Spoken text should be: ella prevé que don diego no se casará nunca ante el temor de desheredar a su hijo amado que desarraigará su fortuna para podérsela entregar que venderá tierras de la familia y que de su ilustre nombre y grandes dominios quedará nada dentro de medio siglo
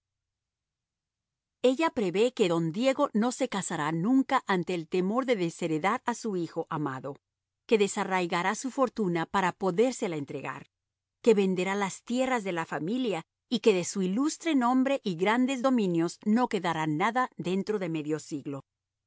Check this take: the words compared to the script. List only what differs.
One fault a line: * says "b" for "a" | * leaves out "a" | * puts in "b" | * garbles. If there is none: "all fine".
* puts in "las"
* puts in "no"